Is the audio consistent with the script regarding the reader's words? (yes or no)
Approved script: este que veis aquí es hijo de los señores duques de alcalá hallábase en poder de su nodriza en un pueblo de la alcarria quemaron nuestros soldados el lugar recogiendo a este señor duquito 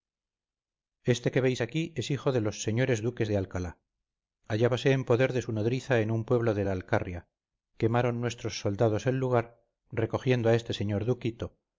yes